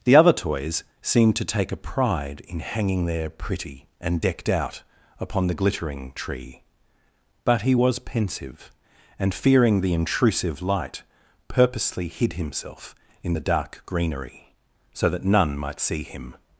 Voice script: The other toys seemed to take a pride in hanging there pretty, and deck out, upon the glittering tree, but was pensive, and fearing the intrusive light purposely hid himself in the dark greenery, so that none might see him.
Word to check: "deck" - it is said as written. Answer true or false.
false